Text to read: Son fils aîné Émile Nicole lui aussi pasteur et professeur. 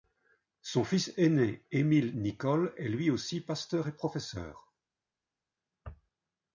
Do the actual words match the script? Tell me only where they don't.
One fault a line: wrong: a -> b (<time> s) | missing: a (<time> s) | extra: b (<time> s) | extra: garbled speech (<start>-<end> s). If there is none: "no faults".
extra: est (2.8 s)